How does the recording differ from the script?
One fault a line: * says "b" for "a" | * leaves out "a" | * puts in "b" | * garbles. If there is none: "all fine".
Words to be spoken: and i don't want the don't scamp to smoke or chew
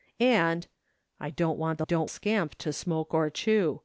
all fine